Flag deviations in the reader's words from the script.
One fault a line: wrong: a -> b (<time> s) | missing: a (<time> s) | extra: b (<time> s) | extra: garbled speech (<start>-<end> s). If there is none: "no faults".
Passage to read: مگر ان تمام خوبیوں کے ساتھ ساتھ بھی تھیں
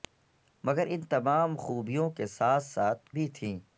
no faults